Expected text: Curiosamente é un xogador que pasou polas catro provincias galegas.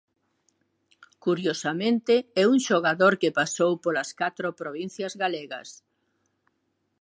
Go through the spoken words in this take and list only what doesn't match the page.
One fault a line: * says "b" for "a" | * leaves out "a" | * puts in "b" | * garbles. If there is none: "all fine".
all fine